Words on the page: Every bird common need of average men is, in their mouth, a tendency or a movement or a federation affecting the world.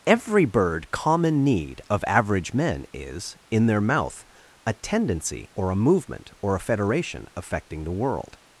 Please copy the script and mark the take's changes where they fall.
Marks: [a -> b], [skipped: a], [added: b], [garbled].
Every bird common need of average men is, in their mouth, a tendency or a movement or a federation affecting the world.